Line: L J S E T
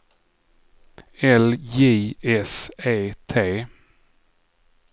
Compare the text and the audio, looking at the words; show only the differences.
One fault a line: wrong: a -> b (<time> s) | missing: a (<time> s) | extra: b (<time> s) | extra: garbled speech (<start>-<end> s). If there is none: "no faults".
no faults